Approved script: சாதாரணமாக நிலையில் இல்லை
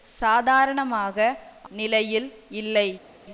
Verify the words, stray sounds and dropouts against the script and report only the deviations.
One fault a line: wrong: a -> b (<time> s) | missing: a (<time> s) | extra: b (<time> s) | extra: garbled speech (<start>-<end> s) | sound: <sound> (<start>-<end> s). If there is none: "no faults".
no faults